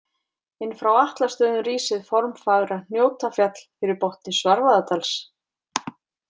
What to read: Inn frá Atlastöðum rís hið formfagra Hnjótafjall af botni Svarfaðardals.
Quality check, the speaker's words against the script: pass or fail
fail